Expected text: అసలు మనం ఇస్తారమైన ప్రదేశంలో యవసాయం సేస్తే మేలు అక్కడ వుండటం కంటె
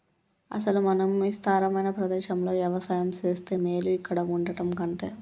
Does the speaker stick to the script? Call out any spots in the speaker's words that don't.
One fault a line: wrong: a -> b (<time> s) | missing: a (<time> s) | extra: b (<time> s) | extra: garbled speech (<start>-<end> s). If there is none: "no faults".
wrong: అక్కడ -> ఇక్కడ (3.9 s)